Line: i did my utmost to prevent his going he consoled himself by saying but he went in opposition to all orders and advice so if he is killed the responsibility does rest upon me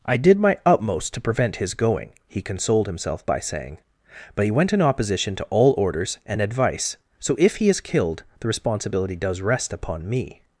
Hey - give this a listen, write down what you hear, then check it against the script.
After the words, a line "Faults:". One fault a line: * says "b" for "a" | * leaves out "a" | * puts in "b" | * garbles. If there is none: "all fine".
i did my utmost to prevent his going he consoled himself by saying but he went in opposition to all orders and advice so if he is killed the responsibility does rest upon me
Faults:
all fine